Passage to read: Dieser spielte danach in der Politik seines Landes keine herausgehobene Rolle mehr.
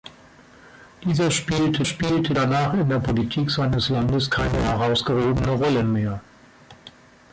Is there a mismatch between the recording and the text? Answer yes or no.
yes